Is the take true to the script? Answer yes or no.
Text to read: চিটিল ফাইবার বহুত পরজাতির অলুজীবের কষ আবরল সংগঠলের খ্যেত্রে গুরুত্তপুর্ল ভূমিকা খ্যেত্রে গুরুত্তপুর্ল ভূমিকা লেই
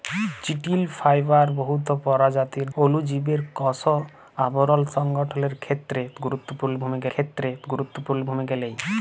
yes